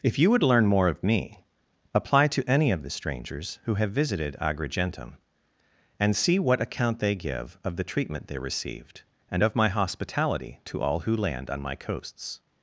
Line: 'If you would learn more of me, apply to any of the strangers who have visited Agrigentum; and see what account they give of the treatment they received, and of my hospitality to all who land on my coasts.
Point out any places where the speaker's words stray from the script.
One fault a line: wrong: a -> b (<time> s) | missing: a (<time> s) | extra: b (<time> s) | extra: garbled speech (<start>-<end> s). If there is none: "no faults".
no faults